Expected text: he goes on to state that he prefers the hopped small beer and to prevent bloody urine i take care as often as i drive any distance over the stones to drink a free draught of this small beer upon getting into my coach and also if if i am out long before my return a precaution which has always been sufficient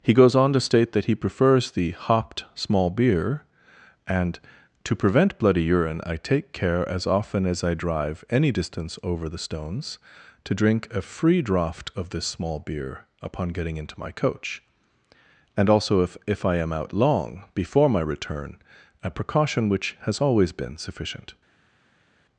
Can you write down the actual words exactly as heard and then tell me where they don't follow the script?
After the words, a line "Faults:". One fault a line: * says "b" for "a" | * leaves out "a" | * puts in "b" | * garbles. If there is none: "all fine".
he goes on to state that he prefers the hopped small beer and to prevent bloody urine i take care as often as i drive any distance over the stones to drink a free draught of this small beer upon getting into my coach and also if if i am out long before my return a precaution which has always been sufficient
Faults:
all fine